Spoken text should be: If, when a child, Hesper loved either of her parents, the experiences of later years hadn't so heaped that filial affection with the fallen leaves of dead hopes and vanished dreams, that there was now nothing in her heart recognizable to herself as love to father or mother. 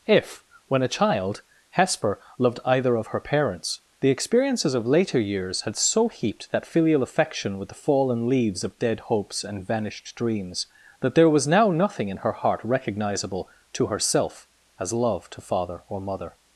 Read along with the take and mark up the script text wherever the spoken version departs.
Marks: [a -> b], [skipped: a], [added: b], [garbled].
If, when a child, Hesper loved either of her parents, the experiences of later years [hadn't -> had] so heaped that filial affection with the fallen leaves of dead hopes and vanished dreams, that there was now nothing in her heart recognizable to herself as love to father or mother.